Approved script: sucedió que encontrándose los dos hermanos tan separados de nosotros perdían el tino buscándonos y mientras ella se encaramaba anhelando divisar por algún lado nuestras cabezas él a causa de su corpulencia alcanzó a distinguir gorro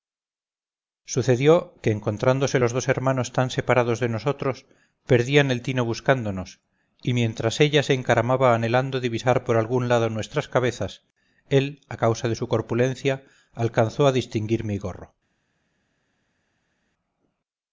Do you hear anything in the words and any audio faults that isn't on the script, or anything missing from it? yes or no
yes